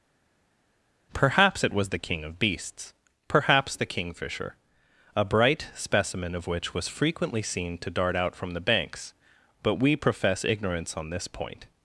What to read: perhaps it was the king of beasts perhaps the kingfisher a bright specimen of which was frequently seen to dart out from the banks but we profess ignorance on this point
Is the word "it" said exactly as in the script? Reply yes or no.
yes